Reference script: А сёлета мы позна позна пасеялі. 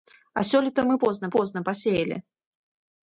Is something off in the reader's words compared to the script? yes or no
no